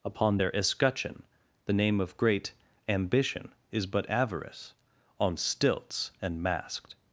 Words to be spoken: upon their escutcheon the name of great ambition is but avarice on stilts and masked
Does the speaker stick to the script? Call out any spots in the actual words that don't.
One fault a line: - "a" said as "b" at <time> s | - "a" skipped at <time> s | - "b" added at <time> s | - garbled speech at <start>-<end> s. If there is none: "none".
none